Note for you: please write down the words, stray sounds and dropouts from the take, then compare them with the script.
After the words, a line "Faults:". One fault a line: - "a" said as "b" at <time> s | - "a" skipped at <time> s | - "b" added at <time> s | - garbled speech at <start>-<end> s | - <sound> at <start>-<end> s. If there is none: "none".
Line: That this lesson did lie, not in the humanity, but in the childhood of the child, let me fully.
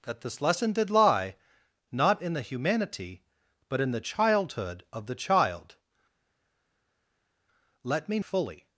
That this lesson did lie, not in the humanity, but in the childhood of the child, let me fully.
Faults:
none